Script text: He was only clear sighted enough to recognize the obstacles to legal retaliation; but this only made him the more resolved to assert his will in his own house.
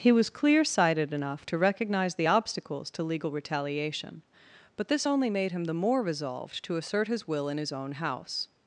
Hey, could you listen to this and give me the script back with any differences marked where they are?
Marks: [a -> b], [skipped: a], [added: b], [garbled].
He was [skipped: only] clear sighted enough to recognize the obstacles to legal retaliation; but this only made him the more resolved to assert his will in his own house.